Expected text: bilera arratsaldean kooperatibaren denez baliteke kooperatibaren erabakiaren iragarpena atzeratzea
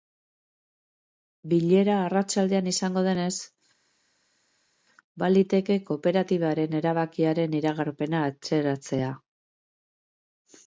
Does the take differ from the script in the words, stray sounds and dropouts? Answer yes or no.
yes